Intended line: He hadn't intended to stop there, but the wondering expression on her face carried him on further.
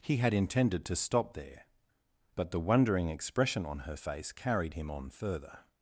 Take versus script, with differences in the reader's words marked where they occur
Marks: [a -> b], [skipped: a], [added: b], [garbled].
He [hadn't -> had] intended to stop there, but the wondering expression on her face carried him on further.